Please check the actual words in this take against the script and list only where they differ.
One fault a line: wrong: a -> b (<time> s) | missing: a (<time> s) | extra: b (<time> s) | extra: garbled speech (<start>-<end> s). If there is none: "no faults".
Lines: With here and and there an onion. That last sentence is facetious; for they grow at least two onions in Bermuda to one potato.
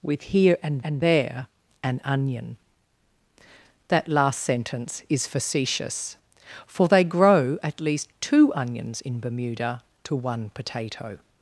no faults